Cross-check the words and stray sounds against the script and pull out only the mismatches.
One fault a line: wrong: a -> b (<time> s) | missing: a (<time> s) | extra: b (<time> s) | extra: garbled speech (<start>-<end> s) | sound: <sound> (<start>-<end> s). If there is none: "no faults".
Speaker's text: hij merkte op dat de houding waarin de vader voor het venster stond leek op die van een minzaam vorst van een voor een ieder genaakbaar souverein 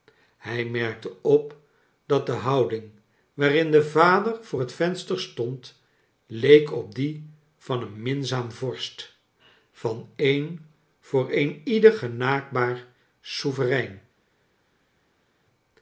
no faults